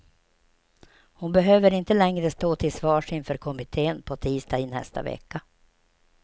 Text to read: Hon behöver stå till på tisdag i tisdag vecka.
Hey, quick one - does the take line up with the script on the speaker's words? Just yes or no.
no